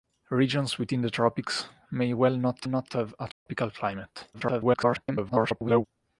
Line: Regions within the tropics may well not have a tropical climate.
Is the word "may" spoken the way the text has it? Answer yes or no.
yes